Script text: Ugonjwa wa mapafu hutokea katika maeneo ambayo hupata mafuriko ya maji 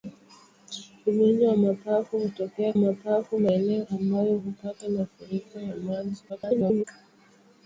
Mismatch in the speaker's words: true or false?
true